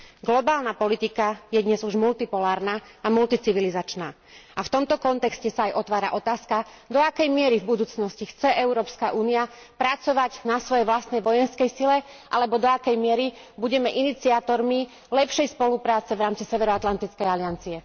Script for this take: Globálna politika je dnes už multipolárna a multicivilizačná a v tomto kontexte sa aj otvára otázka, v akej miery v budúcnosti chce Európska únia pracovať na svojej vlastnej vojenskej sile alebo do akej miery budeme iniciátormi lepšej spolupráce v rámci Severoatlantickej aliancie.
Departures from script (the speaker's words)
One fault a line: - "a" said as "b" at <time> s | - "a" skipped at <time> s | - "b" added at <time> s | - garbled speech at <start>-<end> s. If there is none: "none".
- "v" said as "do" at 6.8 s